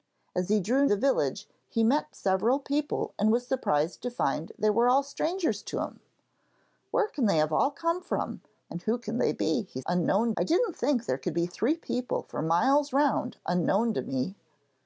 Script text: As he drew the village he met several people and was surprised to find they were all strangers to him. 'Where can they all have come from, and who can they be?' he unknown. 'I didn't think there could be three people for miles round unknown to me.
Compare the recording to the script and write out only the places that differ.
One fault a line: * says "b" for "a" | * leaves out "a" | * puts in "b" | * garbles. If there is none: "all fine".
all fine